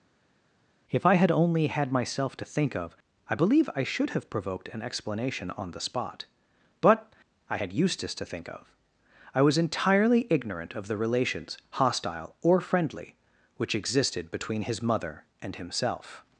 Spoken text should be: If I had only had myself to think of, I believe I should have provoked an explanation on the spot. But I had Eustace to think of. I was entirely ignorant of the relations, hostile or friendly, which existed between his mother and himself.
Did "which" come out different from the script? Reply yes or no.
no